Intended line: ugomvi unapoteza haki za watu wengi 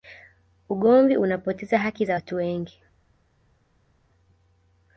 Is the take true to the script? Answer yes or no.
yes